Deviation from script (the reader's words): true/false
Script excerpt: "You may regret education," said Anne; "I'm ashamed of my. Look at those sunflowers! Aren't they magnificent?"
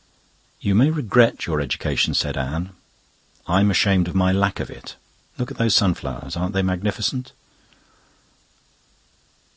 true